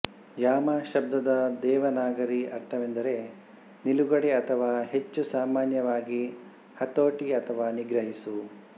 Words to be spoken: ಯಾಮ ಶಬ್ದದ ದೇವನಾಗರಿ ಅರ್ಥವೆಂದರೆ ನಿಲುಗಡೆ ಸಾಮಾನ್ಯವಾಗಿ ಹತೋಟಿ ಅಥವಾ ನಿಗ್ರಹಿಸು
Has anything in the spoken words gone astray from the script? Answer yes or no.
yes